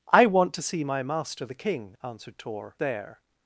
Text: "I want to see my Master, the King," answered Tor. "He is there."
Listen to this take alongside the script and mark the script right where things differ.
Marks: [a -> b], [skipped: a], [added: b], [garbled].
"I want to see my Master, the King," answered Tor. [skipped: "He is] there."